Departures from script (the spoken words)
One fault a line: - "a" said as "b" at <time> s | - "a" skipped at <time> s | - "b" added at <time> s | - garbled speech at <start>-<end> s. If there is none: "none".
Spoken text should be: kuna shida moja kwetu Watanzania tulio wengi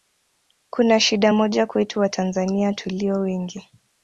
none